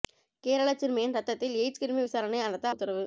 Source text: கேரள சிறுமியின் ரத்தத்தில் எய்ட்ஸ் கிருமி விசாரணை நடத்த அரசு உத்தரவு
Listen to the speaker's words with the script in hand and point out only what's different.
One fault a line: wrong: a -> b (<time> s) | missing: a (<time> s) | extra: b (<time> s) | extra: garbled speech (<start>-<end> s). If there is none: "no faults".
missing: அரசு (2.7 s)